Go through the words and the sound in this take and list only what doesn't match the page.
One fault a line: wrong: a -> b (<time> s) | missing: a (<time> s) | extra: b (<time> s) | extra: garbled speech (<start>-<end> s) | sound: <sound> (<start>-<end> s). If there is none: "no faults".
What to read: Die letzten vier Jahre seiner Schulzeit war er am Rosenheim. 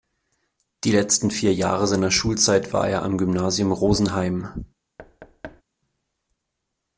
extra: Gymnasium (3.2 s)
sound: thud (5.0-5.6 s)